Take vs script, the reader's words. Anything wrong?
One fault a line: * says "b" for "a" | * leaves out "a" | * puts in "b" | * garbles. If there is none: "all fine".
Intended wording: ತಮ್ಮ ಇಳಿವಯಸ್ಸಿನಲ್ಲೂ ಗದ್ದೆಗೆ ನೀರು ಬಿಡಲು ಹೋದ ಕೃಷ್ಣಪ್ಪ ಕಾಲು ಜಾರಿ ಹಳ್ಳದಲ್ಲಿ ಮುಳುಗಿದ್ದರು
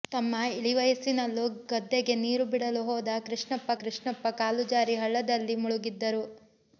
* puts in "ಕೃಷ್ಣಪ್ಪ"